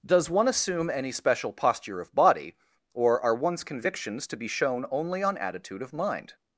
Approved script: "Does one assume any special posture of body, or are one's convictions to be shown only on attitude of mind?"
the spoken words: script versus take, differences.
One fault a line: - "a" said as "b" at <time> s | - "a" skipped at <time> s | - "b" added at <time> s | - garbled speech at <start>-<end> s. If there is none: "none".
none